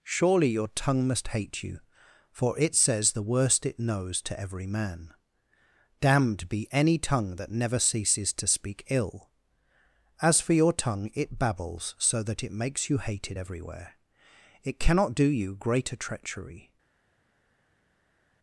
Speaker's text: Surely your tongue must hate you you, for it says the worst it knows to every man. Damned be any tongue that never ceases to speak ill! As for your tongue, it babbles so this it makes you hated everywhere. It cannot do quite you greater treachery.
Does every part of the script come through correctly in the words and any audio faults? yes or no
no